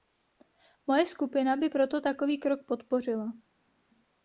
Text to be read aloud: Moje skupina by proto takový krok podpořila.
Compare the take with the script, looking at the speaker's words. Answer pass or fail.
pass